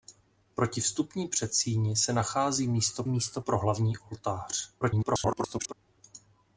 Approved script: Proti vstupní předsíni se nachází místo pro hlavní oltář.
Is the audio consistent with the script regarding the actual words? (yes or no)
no